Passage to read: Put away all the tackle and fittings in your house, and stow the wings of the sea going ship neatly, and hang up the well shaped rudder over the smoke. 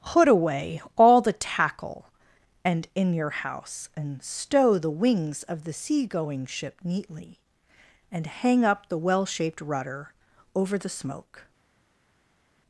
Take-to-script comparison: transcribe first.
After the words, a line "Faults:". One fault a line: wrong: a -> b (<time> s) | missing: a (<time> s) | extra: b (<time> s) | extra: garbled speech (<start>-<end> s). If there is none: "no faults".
Put away all the tackle and in your house, and stow the wings of the sea going ship neatly, and hang up the well shaped rudder over the smoke.
Faults:
missing: fittings (2.9 s)